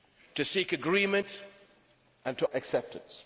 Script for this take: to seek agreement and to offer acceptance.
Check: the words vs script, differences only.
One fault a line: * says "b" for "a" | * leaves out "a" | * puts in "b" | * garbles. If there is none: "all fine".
* leaves out "offer"